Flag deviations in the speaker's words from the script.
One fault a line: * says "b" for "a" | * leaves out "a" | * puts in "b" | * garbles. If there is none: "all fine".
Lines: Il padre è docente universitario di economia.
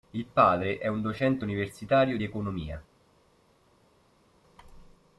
* puts in "un"